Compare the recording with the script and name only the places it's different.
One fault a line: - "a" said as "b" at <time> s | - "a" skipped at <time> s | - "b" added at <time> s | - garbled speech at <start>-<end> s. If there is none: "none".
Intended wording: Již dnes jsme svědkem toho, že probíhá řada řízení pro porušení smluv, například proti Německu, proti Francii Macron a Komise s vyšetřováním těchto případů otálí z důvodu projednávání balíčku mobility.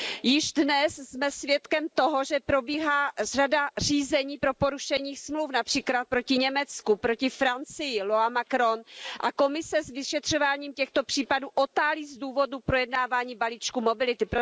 - "loi" added at 8.0 s